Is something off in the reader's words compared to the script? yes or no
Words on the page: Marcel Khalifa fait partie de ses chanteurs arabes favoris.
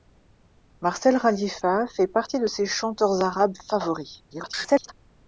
yes